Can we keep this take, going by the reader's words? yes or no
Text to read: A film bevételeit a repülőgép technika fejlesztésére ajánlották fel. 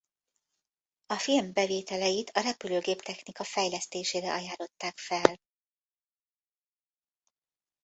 yes